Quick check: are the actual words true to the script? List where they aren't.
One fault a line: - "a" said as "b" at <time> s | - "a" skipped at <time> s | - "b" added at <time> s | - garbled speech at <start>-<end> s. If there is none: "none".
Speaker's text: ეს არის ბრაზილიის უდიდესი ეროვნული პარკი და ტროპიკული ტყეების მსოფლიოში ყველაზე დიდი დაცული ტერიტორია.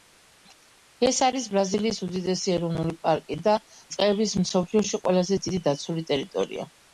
- "ტროპიკული" skipped at 3.5 s